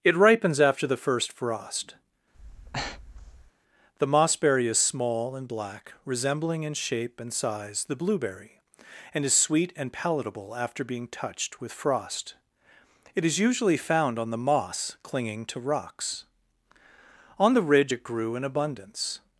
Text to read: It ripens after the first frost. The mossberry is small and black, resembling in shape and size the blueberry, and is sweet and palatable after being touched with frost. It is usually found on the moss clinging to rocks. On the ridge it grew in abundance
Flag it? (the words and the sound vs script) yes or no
yes